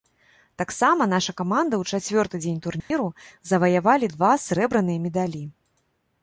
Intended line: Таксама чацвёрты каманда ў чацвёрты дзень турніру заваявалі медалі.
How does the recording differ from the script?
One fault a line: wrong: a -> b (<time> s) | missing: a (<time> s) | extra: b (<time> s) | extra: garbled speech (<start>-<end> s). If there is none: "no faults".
wrong: чацвёрты -> наша (1.1 s)
extra: два срэбраныя (4.1 s)